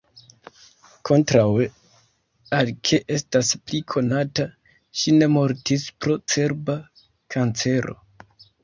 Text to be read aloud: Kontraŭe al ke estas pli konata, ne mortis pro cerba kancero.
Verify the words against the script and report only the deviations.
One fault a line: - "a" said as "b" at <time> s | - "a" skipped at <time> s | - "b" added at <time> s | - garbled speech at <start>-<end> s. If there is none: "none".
- "ŝi" added at 5.0 s